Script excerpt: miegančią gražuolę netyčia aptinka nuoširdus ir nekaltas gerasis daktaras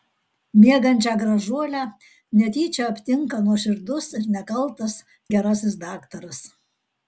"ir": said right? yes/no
yes